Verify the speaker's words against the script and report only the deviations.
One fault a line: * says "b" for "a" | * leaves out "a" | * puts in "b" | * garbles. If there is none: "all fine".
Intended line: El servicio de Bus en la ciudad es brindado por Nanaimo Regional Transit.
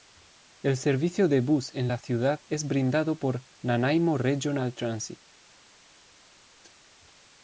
all fine